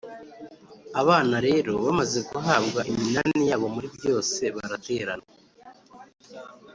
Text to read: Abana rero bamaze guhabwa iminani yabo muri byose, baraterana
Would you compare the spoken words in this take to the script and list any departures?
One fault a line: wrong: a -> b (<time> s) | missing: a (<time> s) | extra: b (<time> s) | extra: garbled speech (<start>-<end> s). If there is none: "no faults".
no faults